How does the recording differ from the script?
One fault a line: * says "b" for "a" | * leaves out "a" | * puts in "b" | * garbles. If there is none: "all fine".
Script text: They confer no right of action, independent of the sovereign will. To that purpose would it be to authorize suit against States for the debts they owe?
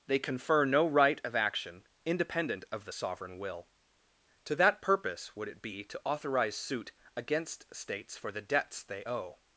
all fine